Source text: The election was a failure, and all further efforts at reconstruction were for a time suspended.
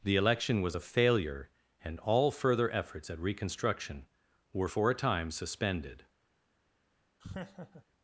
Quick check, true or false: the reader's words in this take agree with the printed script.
true